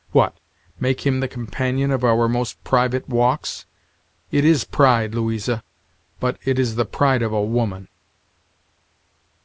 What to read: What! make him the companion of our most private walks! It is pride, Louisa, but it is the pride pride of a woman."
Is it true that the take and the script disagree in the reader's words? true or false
true